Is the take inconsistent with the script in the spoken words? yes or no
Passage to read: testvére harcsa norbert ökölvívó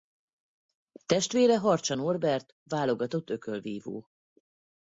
yes